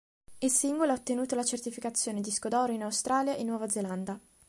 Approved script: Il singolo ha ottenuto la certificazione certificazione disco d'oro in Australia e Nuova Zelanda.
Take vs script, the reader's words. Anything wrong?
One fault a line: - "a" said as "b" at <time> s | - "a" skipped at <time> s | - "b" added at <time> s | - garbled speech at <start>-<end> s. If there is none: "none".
- "certificazione" skipped at 2.2 s